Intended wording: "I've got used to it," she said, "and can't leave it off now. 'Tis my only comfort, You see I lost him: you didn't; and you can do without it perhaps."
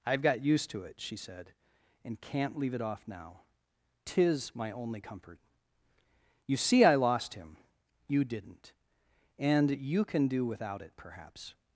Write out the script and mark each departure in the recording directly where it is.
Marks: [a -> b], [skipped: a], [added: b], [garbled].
"I've got used to it," she said, "and can't leave it off now. 'Tis my only comfort, You see I lost him: you didn't; and you can do without it perhaps."